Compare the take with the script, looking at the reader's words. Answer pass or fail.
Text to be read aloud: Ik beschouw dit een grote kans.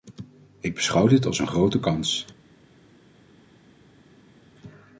fail